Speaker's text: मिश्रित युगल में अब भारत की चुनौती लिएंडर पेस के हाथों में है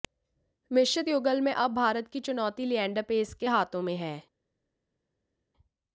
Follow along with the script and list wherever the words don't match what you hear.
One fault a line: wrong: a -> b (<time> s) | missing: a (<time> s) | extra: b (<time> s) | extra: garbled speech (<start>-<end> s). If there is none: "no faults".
no faults